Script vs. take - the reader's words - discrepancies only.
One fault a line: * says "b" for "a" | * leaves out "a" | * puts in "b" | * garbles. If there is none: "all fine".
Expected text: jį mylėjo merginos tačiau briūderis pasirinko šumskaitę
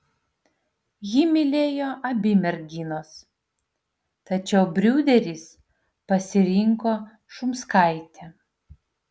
* puts in "abi"